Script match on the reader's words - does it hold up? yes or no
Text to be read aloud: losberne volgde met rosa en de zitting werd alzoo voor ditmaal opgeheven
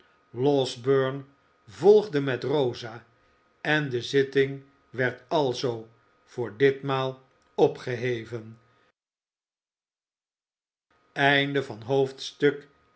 yes